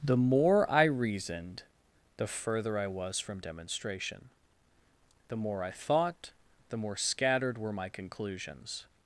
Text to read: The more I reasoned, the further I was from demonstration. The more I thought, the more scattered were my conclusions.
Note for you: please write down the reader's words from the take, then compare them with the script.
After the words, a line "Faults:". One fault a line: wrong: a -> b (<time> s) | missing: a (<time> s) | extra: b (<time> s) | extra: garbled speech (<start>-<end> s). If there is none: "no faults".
The more I reasoned, the further I was from demonstration. The more I thought, the more scattered were my conclusions.
Faults:
no faults